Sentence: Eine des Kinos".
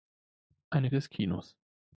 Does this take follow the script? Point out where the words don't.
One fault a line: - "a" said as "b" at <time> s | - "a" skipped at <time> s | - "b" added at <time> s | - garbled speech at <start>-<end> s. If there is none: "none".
none